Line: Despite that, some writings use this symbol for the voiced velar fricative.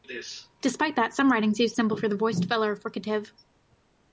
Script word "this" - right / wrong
wrong